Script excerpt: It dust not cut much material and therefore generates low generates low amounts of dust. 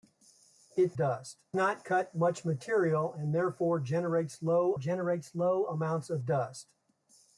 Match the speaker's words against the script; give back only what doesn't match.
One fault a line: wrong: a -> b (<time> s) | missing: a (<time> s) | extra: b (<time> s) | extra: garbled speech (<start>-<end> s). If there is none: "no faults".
no faults